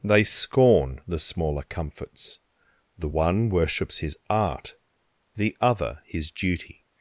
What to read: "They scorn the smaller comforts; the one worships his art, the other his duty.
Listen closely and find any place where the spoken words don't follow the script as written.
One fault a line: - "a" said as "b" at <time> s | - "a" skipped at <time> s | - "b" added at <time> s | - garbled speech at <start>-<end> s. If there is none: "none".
none